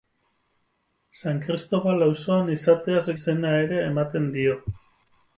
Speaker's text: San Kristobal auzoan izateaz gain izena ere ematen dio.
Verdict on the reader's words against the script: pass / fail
fail